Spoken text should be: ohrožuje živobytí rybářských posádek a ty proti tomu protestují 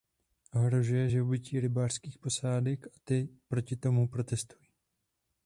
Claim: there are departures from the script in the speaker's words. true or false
false